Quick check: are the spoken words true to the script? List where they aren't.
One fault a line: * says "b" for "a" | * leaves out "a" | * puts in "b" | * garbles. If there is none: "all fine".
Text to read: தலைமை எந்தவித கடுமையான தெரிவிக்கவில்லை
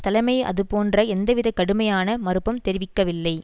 * puts in "அதுபோன்ற"
* puts in "மறுப்பும்"